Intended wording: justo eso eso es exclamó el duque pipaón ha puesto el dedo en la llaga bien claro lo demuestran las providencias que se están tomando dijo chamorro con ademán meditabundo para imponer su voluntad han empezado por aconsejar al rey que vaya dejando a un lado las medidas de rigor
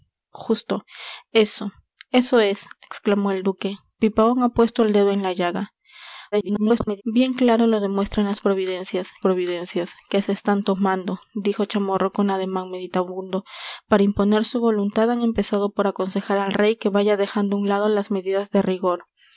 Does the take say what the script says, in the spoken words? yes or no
no